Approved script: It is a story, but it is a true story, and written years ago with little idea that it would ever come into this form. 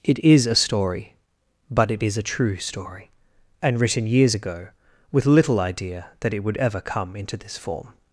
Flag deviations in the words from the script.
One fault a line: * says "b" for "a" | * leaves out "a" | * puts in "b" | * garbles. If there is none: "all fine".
all fine